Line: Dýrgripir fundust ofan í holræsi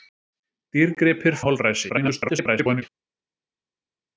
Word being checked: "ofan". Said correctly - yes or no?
no